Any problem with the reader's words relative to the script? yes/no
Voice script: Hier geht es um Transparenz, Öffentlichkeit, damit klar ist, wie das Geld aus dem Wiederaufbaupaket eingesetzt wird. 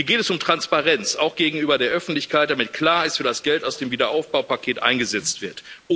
yes